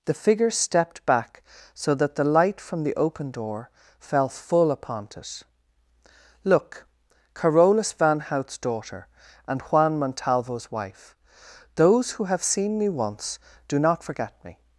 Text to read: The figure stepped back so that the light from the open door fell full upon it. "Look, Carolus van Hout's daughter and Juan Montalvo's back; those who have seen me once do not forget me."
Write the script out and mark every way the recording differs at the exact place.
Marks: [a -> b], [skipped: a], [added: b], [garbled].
The figure stepped back so that the light from the open door fell full upon it. "Look, Carolus van Hout's daughter and Juan Montalvo's [back; -> wife] those who have seen me once do not forget me."